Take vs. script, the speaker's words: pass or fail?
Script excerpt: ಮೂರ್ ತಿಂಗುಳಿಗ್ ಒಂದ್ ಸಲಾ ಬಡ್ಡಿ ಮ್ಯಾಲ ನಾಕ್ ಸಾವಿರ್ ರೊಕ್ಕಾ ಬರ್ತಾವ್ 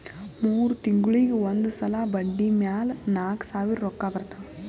pass